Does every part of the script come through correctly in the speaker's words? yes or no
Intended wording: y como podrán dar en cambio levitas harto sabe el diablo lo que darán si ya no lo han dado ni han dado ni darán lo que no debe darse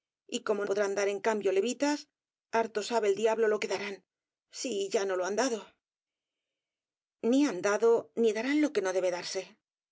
yes